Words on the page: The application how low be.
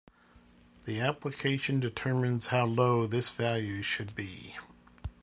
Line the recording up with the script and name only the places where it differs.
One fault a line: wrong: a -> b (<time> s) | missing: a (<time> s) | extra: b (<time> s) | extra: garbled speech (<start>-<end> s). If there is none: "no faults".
extra: determines (1.8 s)
extra: this value should (3.0 s)